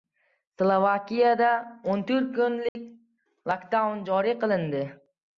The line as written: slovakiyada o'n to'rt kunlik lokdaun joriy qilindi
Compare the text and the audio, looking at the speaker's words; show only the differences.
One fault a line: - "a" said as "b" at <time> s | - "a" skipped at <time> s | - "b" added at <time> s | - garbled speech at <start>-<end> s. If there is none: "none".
none